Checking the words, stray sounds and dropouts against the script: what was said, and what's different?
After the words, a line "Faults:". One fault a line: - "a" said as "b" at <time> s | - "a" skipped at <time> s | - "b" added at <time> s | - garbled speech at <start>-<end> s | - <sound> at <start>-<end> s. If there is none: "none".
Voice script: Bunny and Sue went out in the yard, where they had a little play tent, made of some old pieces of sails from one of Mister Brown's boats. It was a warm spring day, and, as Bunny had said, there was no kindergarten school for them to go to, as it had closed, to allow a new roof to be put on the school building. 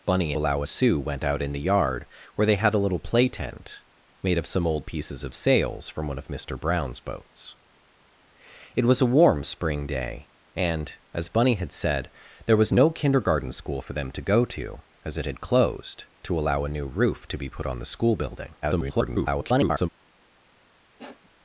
Bunny allow Sue went out in the yard, where they had a little play tent, made of some old pieces of sails from one of Mister Brown's boats. It was a warm spring day, and, as Bunny had said, there was no kindergarten school for them to go to, as it had closed, to allow a new roof to be put on the school building. [garbled]
Faults:
- "and" said as "allow" at 0.3 s
- garbled speech at 18.6-19.9 s
- sniff at 21.0-21.3 s